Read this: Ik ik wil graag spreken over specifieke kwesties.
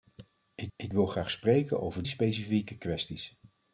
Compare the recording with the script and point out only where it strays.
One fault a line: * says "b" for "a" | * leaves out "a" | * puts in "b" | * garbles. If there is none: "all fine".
all fine